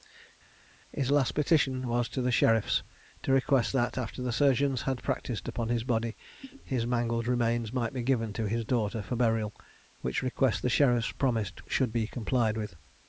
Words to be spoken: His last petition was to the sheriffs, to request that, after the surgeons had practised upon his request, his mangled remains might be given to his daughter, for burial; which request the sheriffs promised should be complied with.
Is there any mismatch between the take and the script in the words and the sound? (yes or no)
yes